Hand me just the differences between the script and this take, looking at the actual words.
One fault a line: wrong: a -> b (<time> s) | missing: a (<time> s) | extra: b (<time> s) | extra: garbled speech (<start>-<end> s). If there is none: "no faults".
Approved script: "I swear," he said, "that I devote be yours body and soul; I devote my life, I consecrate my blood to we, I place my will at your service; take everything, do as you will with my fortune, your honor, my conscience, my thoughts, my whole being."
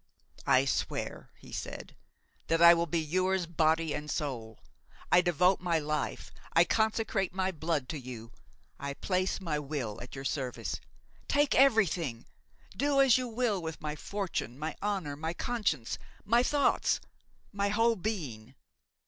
wrong: devote -> will (2.7 s)
wrong: we -> you (8.0 s)
wrong: your -> my (14.6 s)